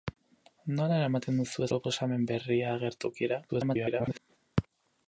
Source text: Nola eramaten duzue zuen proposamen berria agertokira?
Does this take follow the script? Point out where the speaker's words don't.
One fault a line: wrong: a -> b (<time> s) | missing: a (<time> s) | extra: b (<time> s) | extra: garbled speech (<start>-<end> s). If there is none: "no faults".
missing: zuen (1.7 s)
extra: garbled speech (3.5-4.2 s)